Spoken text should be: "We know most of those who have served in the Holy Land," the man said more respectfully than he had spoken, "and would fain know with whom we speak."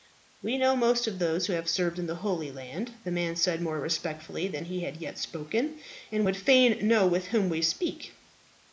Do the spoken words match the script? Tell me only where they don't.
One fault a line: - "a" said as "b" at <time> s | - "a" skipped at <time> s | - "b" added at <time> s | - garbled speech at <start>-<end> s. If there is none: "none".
- "yet" added at 5.0 s